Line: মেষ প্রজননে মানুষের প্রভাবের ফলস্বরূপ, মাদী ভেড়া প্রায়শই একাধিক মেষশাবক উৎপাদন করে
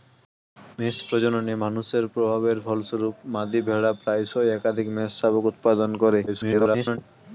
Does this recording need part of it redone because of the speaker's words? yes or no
yes